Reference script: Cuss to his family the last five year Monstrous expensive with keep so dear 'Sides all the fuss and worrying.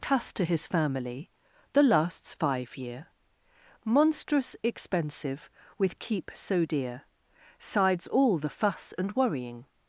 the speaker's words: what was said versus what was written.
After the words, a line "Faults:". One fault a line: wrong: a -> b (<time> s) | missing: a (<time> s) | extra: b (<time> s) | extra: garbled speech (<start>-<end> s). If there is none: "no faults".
Cuss to his family the lasts five year Monstrous expensive with keep so dear 'Sides all the fuss and worrying.
Faults:
wrong: last -> lasts (1.8 s)